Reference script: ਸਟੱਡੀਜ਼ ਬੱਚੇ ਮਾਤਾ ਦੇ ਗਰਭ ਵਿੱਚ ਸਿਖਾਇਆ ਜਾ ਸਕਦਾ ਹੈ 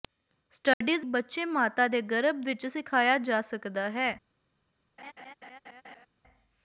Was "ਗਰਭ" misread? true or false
false